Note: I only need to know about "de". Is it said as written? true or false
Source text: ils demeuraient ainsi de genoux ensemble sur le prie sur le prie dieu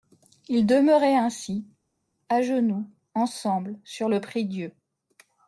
false